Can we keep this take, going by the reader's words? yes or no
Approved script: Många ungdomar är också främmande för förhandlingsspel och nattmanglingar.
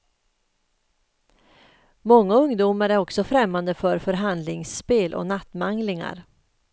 yes